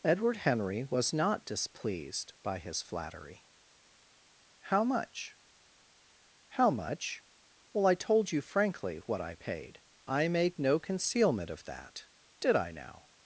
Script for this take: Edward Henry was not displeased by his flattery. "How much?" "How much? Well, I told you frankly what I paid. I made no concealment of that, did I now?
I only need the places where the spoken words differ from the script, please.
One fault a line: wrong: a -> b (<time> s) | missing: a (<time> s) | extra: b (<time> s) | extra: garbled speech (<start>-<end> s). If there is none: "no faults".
no faults